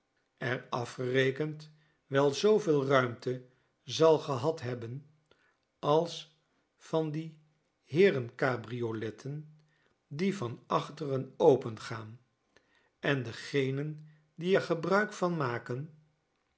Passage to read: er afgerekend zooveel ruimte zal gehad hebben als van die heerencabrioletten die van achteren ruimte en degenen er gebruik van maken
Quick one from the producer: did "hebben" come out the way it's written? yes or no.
yes